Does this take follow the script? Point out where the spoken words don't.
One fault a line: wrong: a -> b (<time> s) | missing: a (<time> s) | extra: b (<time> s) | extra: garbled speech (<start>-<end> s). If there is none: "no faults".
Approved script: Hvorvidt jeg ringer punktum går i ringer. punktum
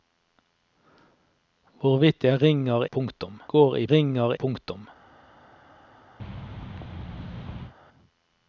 no faults